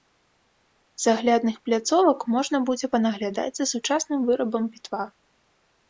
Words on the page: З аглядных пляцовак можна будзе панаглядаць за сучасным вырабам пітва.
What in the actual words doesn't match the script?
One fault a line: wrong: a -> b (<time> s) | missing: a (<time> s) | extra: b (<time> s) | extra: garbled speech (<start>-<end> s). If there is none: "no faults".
no faults